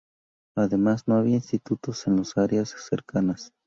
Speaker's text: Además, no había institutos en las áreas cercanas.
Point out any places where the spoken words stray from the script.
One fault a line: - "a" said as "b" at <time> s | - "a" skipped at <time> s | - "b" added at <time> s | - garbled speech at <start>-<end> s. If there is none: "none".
none